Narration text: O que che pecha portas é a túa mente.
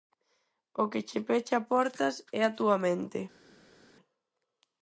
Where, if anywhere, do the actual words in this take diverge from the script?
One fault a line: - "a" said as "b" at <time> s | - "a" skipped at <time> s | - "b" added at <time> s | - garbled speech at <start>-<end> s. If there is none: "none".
none